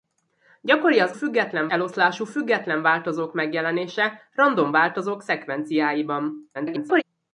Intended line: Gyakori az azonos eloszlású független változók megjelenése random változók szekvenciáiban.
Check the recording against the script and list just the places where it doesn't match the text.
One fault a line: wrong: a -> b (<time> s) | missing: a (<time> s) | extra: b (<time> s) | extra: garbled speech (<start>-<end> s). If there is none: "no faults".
wrong: azonos -> független (1.1 s)
extra: garbled speech (6.5-7.0 s)